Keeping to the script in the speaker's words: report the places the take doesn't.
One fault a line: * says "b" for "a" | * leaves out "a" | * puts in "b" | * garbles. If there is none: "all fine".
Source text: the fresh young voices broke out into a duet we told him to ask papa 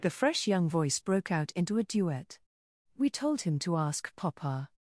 * says "voice" for "voices"